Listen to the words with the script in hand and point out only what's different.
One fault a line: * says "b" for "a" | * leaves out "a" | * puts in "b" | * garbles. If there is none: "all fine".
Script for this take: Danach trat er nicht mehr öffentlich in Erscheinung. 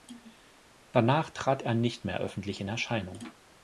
all fine